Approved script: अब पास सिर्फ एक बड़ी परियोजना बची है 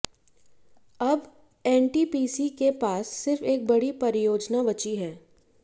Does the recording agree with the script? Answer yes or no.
no